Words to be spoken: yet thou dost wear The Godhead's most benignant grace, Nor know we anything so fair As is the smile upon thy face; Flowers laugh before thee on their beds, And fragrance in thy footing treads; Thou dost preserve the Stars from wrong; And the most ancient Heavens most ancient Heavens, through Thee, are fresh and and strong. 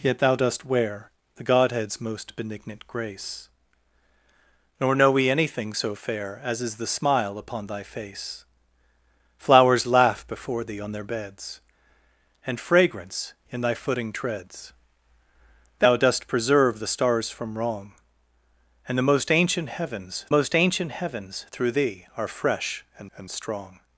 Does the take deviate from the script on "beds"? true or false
false